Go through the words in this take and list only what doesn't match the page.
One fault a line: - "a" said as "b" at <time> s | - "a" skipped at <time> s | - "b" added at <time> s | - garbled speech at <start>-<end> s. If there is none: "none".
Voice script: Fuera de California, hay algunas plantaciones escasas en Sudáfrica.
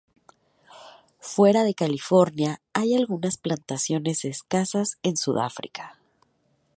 none